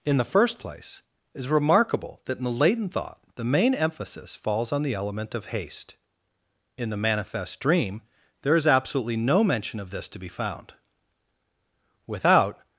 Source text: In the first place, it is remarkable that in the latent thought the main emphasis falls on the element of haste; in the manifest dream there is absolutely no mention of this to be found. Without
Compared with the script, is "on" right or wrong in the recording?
right